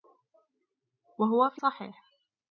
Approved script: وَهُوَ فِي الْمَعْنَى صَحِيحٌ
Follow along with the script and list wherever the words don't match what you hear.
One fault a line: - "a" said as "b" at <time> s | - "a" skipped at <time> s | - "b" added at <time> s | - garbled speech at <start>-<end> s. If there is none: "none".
- "الْمَعْنَى" skipped at 1.6 s